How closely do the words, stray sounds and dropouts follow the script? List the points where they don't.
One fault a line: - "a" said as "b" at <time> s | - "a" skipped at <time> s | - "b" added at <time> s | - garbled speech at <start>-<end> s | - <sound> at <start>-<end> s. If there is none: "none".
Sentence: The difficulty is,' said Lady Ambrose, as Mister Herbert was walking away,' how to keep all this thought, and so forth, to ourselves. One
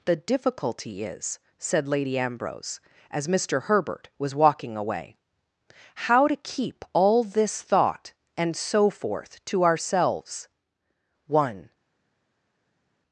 none